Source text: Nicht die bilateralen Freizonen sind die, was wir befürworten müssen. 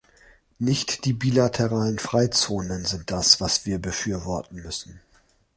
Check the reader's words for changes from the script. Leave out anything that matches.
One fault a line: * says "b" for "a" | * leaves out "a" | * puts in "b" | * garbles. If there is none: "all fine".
* says "das" for "die"